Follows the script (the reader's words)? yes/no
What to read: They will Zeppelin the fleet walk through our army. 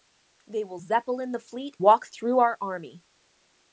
yes